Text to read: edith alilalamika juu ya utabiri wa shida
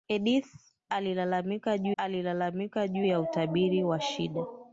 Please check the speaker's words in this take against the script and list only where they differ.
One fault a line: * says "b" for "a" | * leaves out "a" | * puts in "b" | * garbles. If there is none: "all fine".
* puts in "alilalamika juu"